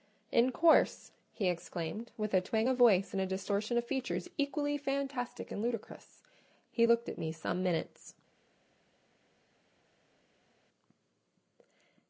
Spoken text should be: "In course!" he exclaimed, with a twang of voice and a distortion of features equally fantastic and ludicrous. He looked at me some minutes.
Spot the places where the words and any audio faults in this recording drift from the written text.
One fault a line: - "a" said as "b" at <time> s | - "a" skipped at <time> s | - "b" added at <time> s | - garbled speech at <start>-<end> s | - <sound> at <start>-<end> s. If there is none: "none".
none